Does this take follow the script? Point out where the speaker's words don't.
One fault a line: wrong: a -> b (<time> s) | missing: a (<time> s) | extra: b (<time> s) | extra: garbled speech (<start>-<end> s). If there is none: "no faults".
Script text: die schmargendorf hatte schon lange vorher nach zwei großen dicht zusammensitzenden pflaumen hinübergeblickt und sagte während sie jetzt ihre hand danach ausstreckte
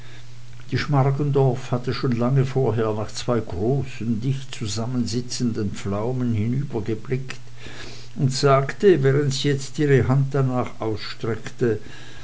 no faults